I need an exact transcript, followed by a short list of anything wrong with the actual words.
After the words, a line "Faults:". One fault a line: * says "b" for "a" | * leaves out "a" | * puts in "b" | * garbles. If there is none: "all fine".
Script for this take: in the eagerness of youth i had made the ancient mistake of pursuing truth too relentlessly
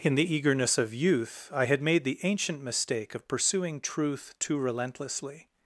in the eagerness of youth i had made the ancient mistake of pursuing truth too relentlessly
Faults:
all fine